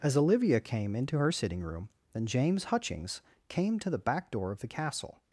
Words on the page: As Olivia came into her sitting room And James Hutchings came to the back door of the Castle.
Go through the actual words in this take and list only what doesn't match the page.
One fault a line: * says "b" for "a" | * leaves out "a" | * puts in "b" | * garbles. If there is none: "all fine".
all fine